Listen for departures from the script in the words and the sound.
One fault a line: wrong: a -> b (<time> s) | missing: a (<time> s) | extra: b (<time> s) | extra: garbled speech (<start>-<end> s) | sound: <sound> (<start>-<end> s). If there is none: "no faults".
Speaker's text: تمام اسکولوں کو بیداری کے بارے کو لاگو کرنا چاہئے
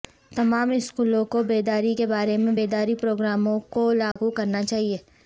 extra: میں بیداری پروگراموں (2.4 s)
sound: dropout (4.1-4.2 s)